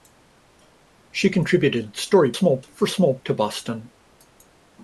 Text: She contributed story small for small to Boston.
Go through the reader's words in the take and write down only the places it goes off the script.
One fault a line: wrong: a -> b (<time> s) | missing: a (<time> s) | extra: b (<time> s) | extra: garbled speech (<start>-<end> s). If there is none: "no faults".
no faults